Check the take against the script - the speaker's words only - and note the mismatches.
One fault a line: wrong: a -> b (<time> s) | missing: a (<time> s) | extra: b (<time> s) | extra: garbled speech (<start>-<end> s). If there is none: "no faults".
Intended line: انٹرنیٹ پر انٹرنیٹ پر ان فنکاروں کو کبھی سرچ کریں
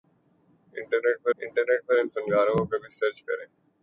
no faults